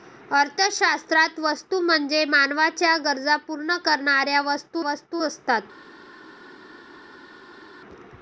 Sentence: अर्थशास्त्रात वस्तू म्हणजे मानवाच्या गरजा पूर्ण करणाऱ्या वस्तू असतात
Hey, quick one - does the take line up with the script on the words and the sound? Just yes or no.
no